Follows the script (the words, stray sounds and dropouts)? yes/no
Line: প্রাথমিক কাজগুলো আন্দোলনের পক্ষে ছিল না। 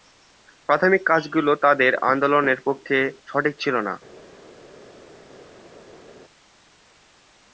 no